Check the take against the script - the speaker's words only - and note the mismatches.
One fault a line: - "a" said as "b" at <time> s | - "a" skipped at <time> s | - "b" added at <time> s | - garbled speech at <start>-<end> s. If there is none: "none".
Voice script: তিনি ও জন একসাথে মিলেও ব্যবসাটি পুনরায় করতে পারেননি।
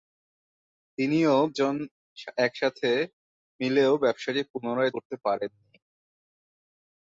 none